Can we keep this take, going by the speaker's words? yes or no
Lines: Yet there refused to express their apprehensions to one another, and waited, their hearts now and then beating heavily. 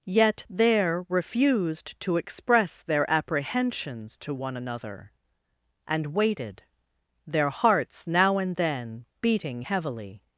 yes